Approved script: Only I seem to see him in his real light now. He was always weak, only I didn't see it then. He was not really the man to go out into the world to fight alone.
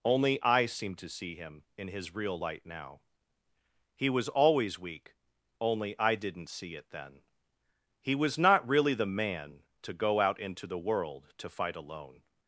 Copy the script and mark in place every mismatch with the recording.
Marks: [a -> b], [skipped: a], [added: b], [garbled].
Only I seem to see him in his real light now. He was always weak, only I didn't see it then. He was not really the man to go out into the world to fight alone.